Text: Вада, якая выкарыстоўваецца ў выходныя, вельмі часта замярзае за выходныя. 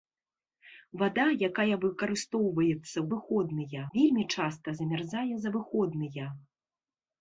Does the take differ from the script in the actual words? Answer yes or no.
no